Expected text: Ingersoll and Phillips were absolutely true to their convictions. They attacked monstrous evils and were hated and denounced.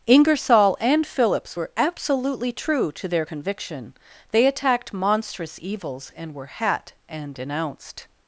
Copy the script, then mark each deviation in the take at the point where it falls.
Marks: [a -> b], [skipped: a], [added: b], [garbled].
Ingersoll and Phillips were absolutely true to their [convictions. -> conviction] They attacked monstrous evils and were [hated -> hat] and denounced.